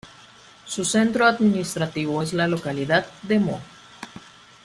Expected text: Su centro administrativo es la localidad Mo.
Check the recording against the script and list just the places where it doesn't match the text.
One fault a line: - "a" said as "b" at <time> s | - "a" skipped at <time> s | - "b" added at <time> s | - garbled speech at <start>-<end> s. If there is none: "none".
- "de" added at 3.2 s